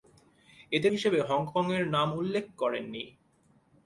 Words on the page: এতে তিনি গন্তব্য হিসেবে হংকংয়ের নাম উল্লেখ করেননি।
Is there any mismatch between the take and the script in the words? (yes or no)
yes